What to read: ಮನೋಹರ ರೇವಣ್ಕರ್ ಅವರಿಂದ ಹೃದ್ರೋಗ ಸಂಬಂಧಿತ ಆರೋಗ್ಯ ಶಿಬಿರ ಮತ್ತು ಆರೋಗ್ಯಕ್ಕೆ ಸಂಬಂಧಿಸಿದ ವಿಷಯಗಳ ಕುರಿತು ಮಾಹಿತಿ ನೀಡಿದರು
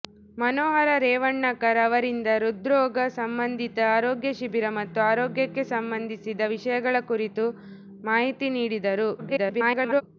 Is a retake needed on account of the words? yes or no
yes